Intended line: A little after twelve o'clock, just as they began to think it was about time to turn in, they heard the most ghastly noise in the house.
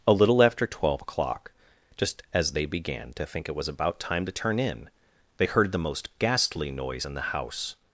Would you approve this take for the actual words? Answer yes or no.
yes